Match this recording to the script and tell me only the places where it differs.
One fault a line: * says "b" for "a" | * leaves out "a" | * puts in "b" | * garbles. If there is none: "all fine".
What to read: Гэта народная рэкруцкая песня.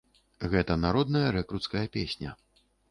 all fine